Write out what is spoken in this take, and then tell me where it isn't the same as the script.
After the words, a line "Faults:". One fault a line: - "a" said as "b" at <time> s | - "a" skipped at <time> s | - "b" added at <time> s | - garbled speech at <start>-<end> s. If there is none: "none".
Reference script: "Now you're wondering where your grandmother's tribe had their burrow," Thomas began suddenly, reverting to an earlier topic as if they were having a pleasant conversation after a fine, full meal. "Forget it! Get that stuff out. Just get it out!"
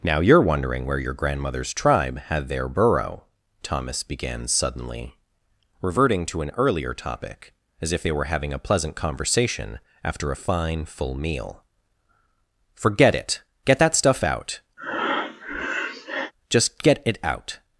"Now you're wondering where your grandmother's tribe had their burrow," Thomas began suddenly, reverting to an earlier topic as if they were having a pleasant conversation after a fine, full meal. "Forget it! Get that stuff out. Just get it out!"
Faults:
none